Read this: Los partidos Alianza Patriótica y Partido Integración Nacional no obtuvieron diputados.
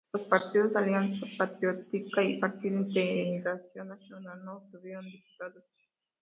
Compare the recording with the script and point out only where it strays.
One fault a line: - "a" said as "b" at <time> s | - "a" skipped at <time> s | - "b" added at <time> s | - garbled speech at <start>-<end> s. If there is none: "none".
none